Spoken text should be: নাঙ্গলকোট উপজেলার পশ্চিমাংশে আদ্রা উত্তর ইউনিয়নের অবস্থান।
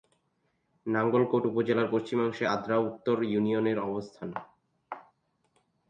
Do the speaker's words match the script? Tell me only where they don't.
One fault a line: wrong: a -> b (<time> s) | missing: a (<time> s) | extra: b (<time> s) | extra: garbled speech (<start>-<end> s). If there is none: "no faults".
no faults